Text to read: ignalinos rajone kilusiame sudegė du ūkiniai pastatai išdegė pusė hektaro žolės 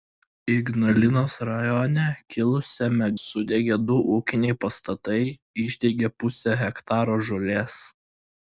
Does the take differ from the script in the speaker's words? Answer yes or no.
no